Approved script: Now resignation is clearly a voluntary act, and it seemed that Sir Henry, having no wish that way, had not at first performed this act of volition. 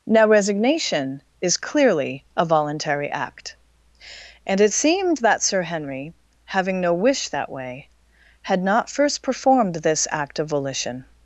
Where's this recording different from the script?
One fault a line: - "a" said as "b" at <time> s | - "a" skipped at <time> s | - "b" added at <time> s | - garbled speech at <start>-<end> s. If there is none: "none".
- "at" skipped at 8.9 s